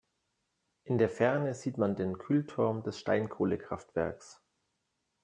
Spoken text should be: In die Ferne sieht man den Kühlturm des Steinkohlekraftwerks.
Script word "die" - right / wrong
wrong